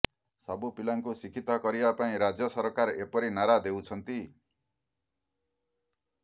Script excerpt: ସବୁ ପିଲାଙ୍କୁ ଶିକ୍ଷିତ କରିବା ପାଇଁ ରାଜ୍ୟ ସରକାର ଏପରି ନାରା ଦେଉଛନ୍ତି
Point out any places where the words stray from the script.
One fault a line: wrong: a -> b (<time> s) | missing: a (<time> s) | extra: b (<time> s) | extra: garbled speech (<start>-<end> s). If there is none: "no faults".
no faults